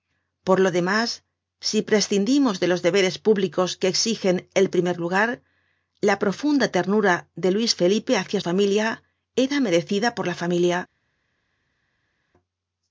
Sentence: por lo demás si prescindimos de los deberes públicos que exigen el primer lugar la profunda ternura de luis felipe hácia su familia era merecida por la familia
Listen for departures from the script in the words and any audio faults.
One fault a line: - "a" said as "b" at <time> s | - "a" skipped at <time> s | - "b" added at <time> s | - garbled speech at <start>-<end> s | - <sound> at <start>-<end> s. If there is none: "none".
- "su" skipped at 8.4 s